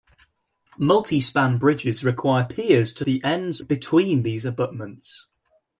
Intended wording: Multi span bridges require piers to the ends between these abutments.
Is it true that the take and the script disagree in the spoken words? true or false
false